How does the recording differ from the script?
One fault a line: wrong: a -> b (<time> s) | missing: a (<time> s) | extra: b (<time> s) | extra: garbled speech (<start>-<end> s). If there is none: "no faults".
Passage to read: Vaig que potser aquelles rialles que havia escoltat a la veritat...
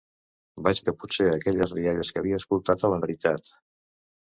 no faults